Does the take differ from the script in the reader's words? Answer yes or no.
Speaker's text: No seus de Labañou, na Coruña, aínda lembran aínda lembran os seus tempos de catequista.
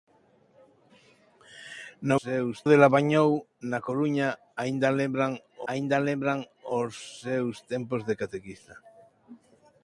no